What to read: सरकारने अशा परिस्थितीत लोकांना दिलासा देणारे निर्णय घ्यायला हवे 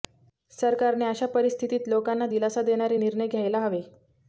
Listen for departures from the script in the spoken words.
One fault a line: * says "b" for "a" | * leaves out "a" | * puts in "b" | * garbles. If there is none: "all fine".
all fine